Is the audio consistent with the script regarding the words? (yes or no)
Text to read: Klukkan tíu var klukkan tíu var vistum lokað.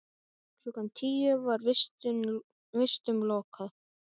no